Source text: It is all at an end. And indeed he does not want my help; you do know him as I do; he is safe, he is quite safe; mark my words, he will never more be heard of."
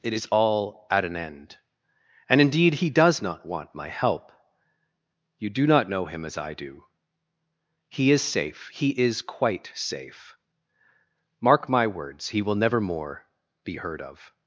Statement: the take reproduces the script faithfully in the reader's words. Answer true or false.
false